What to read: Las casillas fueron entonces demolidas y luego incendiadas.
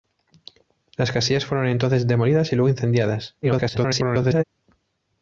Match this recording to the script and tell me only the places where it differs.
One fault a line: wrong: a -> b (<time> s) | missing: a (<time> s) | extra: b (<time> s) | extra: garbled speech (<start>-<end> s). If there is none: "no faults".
extra: garbled speech (3.4-4.4 s)